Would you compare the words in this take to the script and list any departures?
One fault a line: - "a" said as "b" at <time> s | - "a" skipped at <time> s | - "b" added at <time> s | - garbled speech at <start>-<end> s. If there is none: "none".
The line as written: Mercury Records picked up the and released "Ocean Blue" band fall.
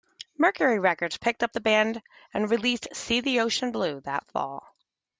- "band" added at 1.6 s
- "See the" added at 2.9 s
- "band" said as "that" at 4.0 s